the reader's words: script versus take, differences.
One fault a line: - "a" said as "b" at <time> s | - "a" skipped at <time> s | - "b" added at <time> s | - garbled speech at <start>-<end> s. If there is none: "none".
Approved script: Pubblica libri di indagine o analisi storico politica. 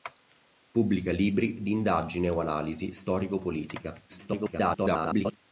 - garbled speech at 4.1-5.4 s